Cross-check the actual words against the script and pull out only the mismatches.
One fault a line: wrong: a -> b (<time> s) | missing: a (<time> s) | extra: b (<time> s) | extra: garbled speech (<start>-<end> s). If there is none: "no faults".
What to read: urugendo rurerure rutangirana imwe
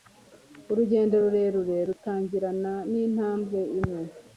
extra: n'intambwe (2.9 s)